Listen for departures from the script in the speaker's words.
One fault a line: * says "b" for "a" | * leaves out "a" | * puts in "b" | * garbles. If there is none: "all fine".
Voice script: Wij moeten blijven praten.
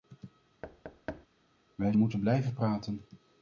all fine